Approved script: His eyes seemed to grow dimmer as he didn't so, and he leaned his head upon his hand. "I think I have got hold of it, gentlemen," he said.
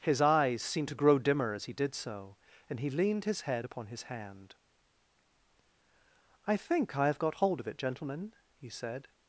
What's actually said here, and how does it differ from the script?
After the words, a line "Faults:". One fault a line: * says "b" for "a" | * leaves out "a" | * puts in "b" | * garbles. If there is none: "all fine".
His eyes seemed to grow dimmer as he did so, and he leaned his head upon his hand. "I think I have got hold of it, gentlemen," he said.
Faults:
* says "did" for "didn't"